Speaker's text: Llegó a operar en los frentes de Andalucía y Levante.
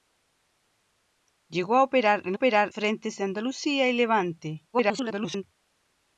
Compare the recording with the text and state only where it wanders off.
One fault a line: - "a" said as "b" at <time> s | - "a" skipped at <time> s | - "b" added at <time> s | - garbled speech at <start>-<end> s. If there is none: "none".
- "los" said as "operar" at 2.3 s
- garbled speech at 4.7-5.4 s